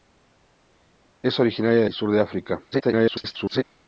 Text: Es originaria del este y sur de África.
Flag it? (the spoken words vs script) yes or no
yes